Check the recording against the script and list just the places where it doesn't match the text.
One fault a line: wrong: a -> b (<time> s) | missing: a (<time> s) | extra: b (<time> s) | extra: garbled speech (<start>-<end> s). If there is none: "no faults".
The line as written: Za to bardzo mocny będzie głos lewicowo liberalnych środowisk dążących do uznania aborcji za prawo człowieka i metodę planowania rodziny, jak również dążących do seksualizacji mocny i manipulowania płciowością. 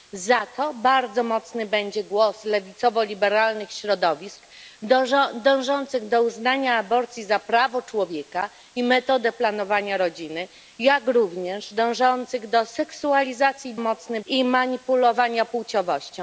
no faults